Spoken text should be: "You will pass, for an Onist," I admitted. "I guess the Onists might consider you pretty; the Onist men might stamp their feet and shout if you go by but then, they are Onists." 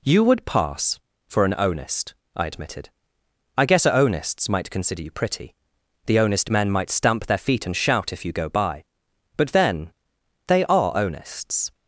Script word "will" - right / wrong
wrong